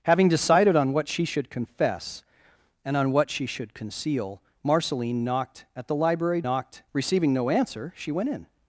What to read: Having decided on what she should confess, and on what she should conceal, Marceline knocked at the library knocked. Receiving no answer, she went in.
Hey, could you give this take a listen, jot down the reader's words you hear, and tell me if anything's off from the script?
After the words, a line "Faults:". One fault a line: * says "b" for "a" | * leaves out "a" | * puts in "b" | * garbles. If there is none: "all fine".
Having decided on what she should confess, and on what she should conceal, Marceline knocked at the library knocked. Receiving no answer, she went in.
Faults:
all fine